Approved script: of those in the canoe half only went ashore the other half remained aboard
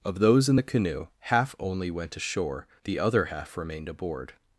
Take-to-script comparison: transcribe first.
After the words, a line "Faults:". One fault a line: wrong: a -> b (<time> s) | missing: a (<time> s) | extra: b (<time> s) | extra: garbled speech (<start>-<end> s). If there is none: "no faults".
of those in the canoe half only went ashore the other half remained aboard
Faults:
no faults